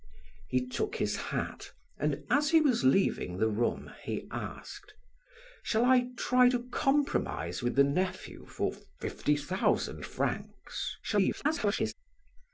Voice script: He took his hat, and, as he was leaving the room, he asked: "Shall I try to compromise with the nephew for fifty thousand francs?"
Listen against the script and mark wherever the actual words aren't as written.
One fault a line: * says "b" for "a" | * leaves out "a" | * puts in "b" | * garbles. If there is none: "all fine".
* garbles